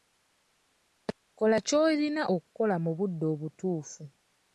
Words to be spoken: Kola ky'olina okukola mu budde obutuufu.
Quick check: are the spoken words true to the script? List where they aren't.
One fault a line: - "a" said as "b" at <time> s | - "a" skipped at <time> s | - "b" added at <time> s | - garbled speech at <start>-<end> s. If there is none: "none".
none